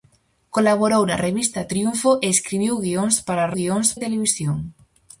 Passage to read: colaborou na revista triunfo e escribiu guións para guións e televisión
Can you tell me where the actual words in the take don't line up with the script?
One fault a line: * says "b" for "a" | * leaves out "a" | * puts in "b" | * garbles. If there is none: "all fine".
all fine